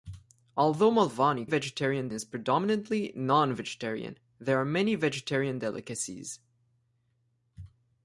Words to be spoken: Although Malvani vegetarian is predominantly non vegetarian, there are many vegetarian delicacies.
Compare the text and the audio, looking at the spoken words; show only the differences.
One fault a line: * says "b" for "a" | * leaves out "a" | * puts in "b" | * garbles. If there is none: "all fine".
all fine